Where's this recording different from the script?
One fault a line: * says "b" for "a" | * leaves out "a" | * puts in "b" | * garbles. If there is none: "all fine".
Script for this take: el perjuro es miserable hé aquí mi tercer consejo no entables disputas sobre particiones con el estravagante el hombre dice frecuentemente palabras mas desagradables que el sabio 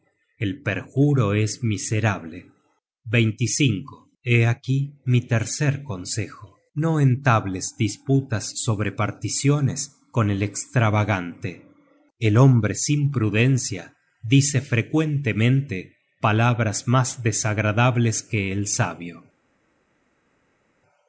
* puts in "sin prudencia"